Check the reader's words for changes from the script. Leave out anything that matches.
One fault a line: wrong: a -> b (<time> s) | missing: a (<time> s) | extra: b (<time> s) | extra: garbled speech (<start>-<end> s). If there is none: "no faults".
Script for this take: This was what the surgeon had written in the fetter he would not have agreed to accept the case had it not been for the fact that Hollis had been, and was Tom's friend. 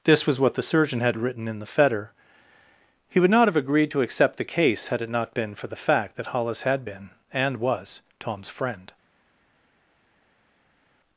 no faults